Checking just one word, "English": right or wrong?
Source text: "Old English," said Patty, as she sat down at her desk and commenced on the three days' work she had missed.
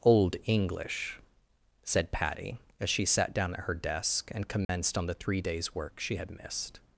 right